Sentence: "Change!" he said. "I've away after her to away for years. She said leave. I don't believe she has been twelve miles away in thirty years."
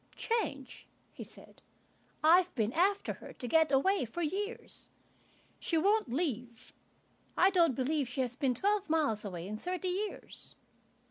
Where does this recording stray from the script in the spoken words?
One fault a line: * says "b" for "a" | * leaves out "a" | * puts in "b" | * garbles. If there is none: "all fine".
* says "been" for "away"
* puts in "get"
* says "won't" for "said"